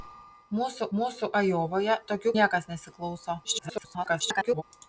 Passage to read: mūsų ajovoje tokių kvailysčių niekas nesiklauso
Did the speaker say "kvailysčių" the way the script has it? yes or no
no